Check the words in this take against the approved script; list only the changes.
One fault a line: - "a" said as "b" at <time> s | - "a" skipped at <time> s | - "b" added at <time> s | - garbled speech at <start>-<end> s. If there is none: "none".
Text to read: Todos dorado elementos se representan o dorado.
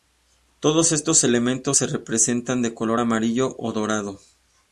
- "dorado" said as "estos" at 0.9 s
- "de color amarillo" added at 2.6 s